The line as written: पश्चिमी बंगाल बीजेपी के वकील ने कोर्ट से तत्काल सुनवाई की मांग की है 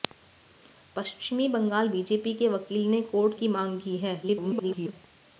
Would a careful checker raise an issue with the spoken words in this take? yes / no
yes